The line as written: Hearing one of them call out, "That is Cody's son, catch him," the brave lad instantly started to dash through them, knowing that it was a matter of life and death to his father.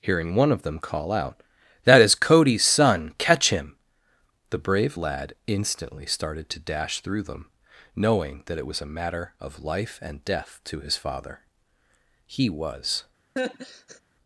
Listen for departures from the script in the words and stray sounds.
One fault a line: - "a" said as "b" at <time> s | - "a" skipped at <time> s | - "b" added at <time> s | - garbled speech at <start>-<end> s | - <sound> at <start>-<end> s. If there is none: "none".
- "He was" added at 12.2 s
- laugh at 13.4-14.0 s